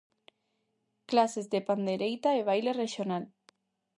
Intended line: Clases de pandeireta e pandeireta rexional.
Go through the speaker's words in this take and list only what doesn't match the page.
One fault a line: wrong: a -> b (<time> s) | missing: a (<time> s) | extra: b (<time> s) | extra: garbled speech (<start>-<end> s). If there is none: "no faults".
wrong: pandeireta -> baile (2.5 s)